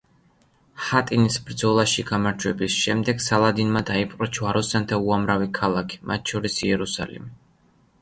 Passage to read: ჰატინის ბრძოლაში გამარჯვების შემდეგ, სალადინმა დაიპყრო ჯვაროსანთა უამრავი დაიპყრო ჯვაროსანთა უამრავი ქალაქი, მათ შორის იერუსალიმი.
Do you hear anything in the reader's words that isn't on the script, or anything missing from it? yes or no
yes